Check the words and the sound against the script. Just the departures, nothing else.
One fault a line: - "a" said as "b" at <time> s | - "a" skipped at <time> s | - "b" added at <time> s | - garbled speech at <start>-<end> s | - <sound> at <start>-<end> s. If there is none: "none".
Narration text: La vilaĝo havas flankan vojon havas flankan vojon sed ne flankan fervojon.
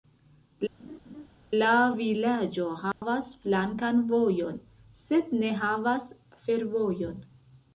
- laugh at 0.8-1.3 s
- dropout at 2.9-3.0 s
- "havas flankan vojon" skipped at 4.6 s
- "flankan" said as "havas" at 5.7 s